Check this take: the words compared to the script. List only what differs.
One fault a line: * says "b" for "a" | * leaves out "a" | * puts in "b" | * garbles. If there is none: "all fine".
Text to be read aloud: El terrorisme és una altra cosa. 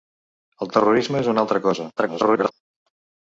* garbles